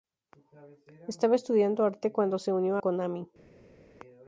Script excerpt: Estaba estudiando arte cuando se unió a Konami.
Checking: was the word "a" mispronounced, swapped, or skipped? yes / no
yes